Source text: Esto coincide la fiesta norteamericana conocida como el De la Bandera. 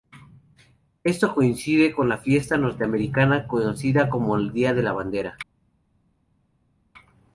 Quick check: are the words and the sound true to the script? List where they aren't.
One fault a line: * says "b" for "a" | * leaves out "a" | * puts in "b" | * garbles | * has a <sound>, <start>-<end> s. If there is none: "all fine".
* puts in "con"
* puts in "Día"